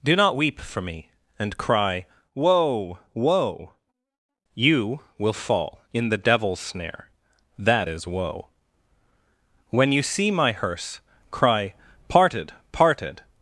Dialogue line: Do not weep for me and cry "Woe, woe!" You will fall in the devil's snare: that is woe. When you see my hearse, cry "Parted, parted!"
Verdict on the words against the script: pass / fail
pass